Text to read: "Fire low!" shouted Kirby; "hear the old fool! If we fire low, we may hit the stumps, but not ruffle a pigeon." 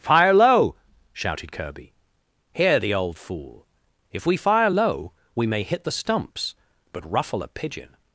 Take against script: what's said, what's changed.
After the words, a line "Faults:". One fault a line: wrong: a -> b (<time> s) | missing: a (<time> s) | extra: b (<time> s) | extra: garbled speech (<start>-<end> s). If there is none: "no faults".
"Fire low!" shouted Kirby; "hear the old fool! If we fire low, we may hit the stumps, but ruffle a pigeon."
Faults:
missing: not (7.1 s)